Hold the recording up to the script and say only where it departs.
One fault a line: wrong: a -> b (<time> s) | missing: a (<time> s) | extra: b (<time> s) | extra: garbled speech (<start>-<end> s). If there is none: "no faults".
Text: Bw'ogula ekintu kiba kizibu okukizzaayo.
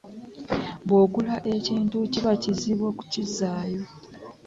no faults